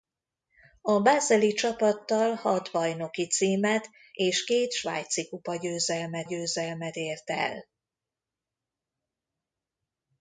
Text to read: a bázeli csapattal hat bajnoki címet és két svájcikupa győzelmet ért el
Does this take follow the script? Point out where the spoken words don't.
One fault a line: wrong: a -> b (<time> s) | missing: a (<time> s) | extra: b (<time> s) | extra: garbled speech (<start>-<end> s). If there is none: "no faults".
extra: győzelmet (6.2 s)